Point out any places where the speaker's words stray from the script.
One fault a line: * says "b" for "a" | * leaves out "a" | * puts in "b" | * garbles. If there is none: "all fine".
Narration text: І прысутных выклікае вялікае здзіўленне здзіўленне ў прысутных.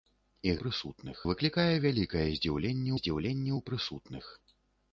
all fine